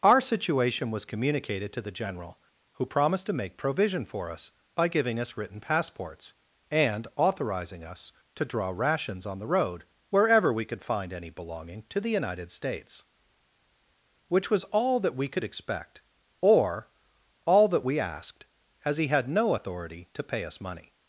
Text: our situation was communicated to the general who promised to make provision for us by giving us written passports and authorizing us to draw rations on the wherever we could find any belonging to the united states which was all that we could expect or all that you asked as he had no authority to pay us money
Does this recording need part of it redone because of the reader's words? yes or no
yes